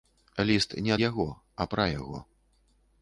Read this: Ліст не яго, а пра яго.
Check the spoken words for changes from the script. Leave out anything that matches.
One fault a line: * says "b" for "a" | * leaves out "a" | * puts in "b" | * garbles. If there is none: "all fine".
all fine